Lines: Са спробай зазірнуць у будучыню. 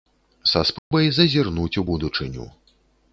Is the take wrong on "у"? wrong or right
right